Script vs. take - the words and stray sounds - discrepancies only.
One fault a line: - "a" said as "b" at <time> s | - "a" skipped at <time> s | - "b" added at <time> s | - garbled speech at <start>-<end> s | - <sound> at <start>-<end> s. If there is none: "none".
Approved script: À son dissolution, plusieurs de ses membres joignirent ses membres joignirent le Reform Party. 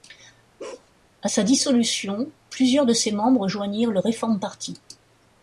- bark at 0.6-0.9 s
- "son" said as "sa" at 1.3 s
- "ses membres joignirent" skipped at 3.9 s